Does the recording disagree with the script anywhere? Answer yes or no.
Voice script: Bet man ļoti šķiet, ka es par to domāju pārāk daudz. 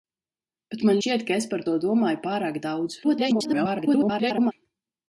yes